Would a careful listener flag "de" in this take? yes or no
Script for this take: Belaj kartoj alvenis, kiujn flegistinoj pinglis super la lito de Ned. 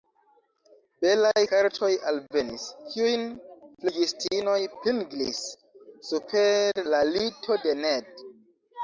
no